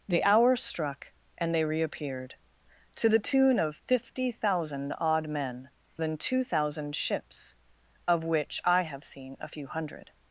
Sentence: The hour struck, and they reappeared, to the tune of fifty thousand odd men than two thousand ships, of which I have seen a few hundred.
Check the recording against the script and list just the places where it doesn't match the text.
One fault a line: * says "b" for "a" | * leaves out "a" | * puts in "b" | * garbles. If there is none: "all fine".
all fine